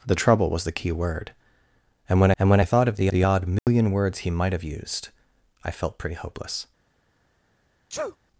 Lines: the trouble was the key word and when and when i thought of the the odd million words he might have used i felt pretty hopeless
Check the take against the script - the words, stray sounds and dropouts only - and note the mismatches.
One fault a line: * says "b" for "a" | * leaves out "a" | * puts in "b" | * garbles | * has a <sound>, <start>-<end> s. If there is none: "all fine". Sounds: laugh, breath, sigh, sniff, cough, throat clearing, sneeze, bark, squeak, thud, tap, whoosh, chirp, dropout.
* has a dropout, 3.6-3.7 s
* has a sneeze, 7.9-8.2 s